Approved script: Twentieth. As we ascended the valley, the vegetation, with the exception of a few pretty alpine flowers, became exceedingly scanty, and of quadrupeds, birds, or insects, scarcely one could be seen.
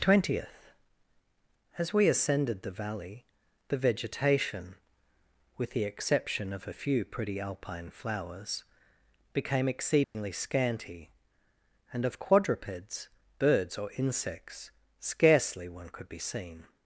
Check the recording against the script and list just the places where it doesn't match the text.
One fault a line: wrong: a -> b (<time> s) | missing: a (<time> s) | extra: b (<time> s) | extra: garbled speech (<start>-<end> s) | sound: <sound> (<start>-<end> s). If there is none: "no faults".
sound: dropout (10.0-10.1 s)